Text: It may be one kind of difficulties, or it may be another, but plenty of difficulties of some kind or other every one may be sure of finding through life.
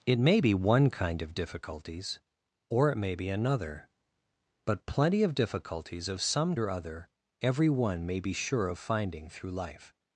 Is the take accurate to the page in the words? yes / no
no